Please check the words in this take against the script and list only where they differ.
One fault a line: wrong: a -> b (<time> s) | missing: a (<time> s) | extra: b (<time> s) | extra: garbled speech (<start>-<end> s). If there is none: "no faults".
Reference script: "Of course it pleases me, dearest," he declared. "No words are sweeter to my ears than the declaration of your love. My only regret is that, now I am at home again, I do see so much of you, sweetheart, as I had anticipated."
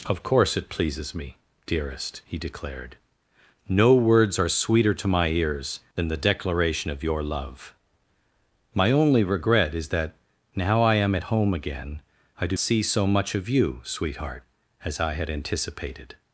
no faults